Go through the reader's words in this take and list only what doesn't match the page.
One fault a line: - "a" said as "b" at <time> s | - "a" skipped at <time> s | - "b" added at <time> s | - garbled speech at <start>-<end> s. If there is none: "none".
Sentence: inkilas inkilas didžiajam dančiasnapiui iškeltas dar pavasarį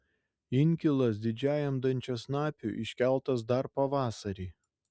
- "inkilas" skipped at 1.2 s